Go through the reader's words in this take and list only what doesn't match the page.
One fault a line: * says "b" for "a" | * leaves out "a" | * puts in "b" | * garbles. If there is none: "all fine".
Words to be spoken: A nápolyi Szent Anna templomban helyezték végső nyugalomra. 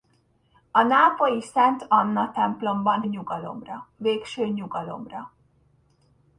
* says "nyugalomra" for "helyezték"